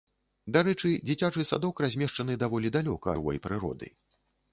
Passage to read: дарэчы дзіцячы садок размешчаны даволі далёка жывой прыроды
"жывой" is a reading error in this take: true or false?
false